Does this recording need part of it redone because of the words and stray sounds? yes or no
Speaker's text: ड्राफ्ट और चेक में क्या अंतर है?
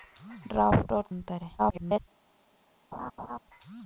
yes